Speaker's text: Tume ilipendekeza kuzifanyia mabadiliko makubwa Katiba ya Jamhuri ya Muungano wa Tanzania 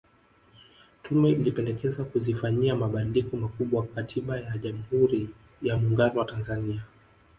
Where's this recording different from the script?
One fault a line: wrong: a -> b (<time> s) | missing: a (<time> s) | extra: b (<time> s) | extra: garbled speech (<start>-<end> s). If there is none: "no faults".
no faults